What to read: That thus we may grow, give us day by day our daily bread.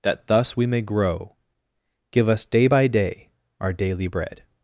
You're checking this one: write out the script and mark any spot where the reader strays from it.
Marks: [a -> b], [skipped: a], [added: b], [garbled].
That thus we may grow, give us day by day our daily bread.